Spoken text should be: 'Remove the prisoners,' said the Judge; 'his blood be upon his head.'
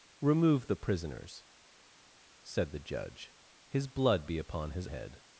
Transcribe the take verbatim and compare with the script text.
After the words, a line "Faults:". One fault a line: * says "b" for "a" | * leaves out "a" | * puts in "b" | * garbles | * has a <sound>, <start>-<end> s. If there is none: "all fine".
'Remove the prisoners,' said the Judge; 'his blood be upon his head.'
Faults:
all fine